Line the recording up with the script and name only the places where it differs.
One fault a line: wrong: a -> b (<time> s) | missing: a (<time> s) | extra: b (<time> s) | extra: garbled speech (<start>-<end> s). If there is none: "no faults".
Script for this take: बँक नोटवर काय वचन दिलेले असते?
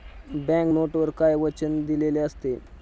no faults